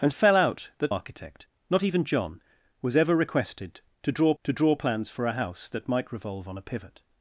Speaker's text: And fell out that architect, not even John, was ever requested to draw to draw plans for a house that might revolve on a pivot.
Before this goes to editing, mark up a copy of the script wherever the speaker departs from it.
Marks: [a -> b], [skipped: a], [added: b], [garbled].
And fell out that architect, not even John, was ever requested to draw to draw plans for a house that might revolve on a pivot.